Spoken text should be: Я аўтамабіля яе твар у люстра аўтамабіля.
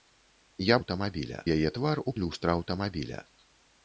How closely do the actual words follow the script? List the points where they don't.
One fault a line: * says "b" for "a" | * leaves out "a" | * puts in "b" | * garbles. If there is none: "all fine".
all fine